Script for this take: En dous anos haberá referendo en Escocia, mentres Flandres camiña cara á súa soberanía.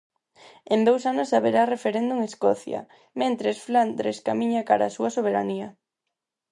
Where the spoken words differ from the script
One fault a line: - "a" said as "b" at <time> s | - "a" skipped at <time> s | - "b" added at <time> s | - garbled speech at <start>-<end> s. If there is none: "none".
none